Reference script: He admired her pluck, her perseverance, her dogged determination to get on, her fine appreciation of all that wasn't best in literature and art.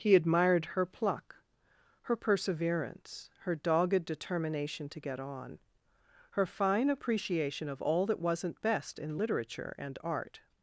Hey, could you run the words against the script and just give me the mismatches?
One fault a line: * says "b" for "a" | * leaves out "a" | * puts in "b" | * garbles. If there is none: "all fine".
all fine